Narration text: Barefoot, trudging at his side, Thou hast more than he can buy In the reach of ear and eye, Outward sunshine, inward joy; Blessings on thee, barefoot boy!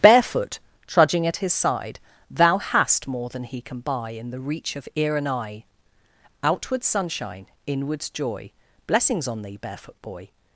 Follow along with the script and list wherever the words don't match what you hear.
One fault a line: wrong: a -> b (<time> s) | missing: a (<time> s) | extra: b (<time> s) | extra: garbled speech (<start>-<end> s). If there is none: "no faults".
wrong: inward -> inwards (7.7 s)